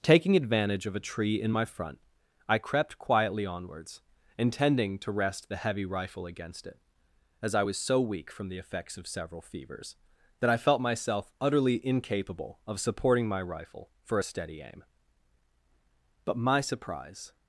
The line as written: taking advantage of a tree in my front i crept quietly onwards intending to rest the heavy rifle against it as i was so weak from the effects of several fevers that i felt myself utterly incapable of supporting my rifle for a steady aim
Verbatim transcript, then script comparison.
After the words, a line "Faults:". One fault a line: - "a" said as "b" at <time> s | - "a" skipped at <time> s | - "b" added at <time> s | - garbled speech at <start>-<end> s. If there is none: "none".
taking advantage of a tree in my front i crept quietly onwards intending to rest the heavy rifle against it as i was so weak from the effects of several fevers that i felt myself utterly incapable of supporting my rifle for a steady aim but my surprise
Faults:
- "but my surprise" added at 16.2 s